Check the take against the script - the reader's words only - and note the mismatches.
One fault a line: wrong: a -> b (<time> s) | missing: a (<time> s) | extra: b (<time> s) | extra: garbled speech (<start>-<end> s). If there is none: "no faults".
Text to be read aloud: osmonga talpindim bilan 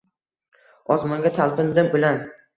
no faults